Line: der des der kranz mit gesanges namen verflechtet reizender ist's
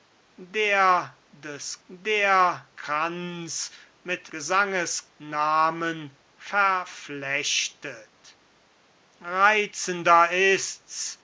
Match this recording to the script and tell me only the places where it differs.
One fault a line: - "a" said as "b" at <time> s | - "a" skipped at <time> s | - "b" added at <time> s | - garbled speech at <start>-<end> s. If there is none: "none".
none